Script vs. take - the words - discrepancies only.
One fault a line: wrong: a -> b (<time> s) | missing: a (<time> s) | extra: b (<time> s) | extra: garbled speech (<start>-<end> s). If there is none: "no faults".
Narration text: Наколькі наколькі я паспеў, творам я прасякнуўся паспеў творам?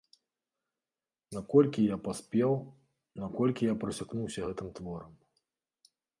missing: наколькі (1.8 s)
wrong: творам -> наколькі (3.2 s)
wrong: паспеў -> гэтым (4.5 s)